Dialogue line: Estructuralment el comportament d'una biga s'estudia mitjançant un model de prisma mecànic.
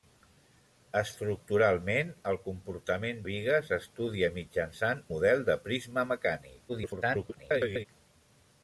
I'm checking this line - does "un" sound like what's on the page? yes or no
no